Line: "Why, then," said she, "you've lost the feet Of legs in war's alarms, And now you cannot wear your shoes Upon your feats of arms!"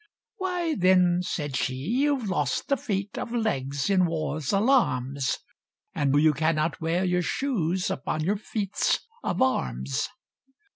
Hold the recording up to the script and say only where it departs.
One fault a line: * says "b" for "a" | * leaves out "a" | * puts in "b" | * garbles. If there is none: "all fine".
* leaves out "now"